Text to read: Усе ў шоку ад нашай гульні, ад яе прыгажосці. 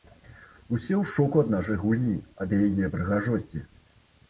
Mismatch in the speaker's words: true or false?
false